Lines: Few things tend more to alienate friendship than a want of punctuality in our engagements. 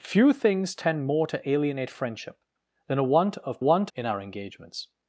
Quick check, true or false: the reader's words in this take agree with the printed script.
false